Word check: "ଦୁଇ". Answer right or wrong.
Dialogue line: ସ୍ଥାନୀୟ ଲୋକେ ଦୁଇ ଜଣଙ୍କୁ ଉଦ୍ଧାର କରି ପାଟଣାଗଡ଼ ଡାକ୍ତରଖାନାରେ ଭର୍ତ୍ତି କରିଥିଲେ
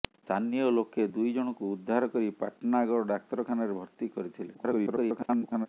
right